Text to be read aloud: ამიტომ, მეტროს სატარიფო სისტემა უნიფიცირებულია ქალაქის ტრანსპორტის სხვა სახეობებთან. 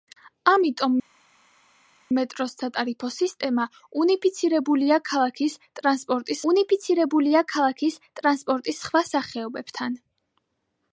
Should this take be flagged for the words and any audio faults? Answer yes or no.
yes